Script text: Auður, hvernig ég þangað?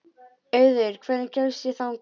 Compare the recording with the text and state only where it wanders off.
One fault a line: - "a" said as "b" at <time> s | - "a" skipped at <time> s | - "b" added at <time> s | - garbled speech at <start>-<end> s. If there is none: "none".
- "kemst" added at 1.4 s